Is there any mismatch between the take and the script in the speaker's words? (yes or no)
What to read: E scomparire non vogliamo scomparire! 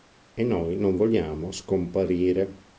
yes